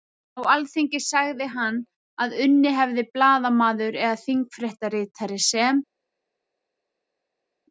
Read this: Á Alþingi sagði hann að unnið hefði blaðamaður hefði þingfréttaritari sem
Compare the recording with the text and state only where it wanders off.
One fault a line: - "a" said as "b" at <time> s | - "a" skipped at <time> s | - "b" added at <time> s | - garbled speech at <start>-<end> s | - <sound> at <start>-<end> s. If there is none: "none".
- "hefði" said as "eða" at 4.1 s